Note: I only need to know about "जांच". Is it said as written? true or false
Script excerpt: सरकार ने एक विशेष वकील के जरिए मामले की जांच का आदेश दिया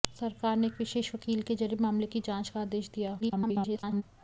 true